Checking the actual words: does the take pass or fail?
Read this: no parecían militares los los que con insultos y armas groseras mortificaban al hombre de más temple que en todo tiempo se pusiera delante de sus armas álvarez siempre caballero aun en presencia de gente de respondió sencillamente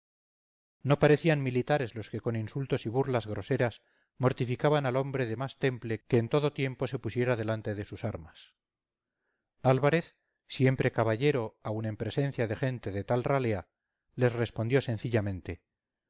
fail